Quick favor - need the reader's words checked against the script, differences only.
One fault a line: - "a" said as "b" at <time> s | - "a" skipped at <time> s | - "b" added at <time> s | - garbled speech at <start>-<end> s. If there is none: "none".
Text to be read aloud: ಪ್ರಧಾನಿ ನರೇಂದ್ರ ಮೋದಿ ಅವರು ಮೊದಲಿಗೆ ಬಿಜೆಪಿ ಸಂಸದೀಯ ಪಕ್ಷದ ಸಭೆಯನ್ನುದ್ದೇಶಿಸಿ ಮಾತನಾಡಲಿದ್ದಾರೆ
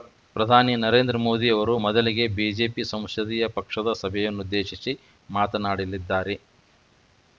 none